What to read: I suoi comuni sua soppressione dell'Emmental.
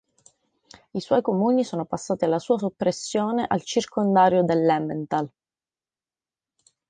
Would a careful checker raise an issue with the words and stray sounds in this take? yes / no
yes